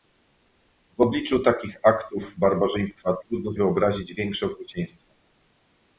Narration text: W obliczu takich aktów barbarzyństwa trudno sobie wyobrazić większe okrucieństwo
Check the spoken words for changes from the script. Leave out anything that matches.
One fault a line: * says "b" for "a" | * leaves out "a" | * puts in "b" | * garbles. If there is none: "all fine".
* leaves out "sobie"